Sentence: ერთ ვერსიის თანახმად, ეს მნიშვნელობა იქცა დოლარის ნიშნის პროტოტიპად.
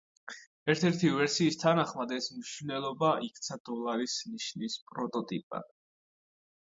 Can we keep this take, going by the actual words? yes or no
no